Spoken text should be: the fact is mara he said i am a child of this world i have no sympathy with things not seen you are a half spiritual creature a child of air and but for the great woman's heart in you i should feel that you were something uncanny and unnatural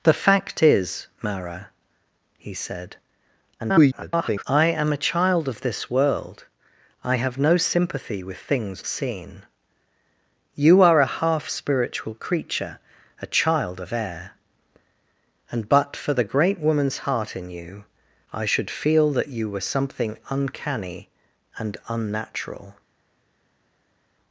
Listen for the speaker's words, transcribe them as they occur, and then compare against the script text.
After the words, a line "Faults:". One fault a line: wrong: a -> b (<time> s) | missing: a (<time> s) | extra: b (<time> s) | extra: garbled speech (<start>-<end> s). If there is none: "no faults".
the fact is mara he said [garbled] i am a child of this world i have no sympathy with things seen you are a half spiritual creature a child of air and but for the great woman's heart in you i should feel that you were something uncanny and unnatural
Faults:
extra: garbled speech (3.6-4.4 s)
missing: not (8.8 s)